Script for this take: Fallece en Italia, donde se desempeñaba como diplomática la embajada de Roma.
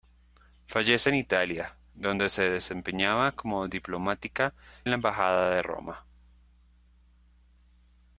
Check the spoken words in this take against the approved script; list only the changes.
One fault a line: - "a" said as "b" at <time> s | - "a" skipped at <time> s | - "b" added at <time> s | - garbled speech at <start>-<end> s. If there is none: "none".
none